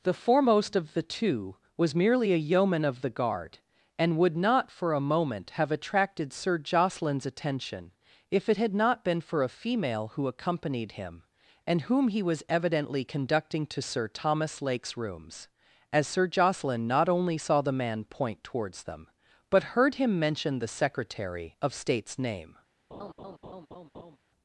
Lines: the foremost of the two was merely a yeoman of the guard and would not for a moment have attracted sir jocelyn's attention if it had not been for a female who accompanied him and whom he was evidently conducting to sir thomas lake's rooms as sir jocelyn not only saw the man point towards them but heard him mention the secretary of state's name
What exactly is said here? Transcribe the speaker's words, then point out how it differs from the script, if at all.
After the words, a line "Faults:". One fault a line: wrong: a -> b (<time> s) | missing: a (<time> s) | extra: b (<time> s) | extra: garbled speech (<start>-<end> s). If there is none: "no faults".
the foremost of the two was merely a yeoman of the guard and would not for a moment have attracted sir jocelyn's attention if it had not been for a female who accompanied him and whom he was evidently conducting to sir thomas lake's rooms as sir jocelyn not only saw the man point towards them but heard him mention the secretary of state's name
Faults:
no faults